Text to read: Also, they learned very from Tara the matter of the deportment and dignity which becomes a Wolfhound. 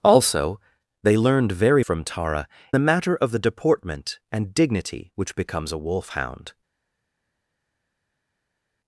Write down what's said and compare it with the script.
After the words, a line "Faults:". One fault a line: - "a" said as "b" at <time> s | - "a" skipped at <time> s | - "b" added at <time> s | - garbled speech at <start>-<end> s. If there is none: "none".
Also, they learned very from Tara the matter of the deportment and dignity which becomes a Wolfhound.
Faults:
none